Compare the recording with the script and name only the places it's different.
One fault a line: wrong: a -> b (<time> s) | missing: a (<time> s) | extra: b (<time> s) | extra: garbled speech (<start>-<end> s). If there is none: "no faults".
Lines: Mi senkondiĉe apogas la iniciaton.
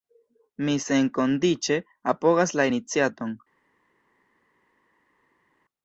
no faults